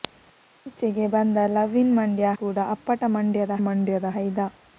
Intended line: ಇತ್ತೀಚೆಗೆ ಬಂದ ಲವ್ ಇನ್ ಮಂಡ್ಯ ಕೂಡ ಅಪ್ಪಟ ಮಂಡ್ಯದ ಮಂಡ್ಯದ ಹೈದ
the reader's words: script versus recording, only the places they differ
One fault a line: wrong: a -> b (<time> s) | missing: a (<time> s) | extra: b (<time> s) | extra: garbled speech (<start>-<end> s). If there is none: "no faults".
no faults